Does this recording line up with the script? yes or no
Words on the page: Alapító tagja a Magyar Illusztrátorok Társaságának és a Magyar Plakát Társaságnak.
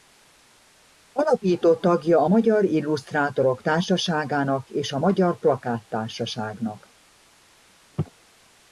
yes